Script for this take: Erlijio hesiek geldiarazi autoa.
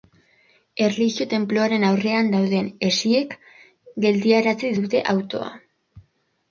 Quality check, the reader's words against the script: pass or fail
fail